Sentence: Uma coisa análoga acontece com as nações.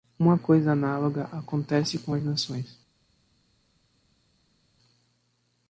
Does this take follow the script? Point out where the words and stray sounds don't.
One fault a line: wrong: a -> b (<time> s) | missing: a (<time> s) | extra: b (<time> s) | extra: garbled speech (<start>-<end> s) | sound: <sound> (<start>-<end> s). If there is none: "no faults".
no faults